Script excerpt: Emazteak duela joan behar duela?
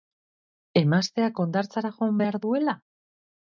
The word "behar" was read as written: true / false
true